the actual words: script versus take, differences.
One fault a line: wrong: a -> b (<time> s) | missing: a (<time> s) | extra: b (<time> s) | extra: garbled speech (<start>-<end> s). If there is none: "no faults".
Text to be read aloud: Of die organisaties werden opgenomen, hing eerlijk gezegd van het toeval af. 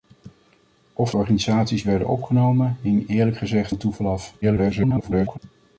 missing: die (1.1 s)
missing: van (3.7 s)
extra: garbled speech (4.4-5.4 s)